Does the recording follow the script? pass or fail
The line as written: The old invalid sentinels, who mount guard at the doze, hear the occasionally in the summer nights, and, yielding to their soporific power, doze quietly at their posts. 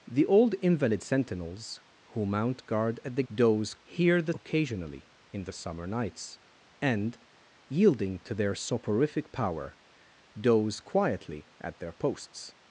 pass